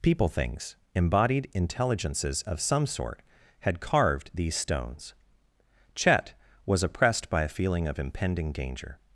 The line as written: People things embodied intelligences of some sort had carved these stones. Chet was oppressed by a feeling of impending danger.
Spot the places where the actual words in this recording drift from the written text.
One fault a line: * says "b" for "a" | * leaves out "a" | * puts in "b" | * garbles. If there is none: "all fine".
all fine